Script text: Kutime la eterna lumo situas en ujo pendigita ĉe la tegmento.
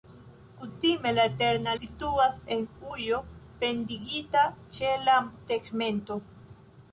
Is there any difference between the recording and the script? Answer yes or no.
yes